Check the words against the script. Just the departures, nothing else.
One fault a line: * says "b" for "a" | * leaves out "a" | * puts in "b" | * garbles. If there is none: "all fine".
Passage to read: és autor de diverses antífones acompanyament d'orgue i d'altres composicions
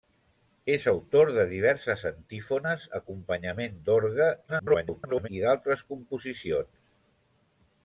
* garbles